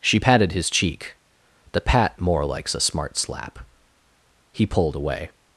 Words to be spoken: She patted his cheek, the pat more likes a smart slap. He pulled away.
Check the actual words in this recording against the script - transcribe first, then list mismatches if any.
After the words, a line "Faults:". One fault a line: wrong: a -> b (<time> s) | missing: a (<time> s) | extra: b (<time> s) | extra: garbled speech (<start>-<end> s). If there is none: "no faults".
She patted his cheek, the pat more likes a smart slap. He pulled away.
Faults:
no faults